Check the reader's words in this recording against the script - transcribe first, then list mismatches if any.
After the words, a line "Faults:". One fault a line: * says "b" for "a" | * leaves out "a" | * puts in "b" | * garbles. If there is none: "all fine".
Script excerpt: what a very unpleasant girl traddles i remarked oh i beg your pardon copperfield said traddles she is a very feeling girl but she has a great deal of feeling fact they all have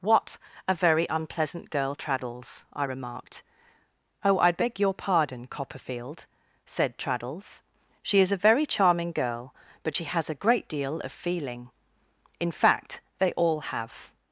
what a very unpleasant girl traddles i remarked oh i beg your pardon copperfield said traddles she is a very charming girl but she has a great deal of feeling in fact they all have
Faults:
* says "charming" for "feeling"
* puts in "in"